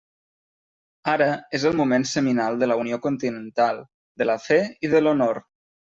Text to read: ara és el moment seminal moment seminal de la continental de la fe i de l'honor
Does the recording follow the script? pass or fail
fail